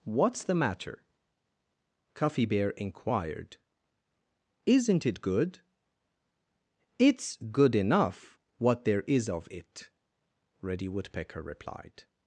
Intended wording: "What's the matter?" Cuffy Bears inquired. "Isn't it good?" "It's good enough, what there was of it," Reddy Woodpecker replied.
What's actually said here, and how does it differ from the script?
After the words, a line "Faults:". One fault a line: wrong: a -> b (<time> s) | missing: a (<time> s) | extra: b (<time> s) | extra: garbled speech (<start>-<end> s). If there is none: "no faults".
"What's the matter?" Cuffy Bear inquired. "Isn't it good?" "It's good enough, what there is of it," Reddy Woodpecker replied.
Faults:
wrong: Bears -> Bear (2.5 s)
wrong: was -> is (9.1 s)